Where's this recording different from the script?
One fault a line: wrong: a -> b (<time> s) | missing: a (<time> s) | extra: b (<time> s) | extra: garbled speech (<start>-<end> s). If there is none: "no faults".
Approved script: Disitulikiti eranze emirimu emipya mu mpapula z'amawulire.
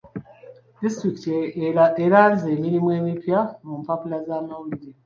no faults